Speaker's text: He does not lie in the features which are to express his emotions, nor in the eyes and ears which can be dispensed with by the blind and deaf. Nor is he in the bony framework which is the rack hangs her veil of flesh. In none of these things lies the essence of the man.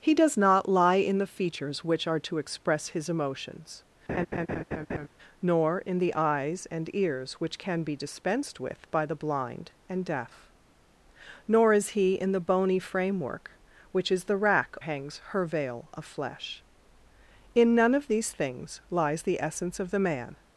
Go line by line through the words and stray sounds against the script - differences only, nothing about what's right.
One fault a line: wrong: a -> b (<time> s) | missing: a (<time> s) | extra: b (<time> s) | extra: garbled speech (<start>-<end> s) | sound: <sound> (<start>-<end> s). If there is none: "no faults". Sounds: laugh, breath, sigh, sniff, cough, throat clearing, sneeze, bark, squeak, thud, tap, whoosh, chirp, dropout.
sound: laugh (4.1-5.1 s)